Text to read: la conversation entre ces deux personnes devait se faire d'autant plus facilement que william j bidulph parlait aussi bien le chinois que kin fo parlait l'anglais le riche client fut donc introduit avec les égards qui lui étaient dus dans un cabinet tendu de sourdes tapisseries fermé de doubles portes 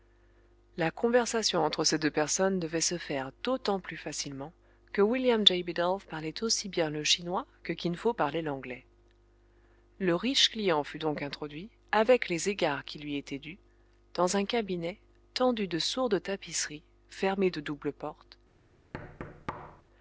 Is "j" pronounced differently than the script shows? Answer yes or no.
no